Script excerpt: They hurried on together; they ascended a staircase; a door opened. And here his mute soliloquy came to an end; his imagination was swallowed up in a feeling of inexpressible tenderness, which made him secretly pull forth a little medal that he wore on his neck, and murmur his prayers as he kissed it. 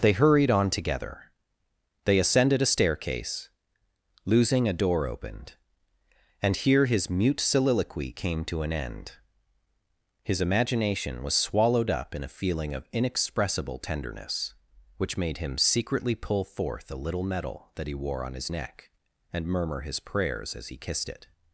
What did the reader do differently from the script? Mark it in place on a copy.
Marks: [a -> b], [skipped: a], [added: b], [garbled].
They hurried on together; they ascended a staircase; [added: losing] a door opened. And here his mute soliloquy came to an end; his imagination was swallowed up in a feeling of inexpressible tenderness, which made him secretly pull forth a little medal that he wore on his neck, and murmur his prayers as he kissed it.